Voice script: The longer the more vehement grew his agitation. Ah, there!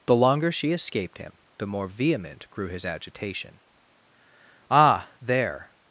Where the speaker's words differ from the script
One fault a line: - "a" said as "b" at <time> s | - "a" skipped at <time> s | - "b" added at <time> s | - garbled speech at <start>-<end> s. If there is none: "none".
- "she escaped him" added at 0.5 s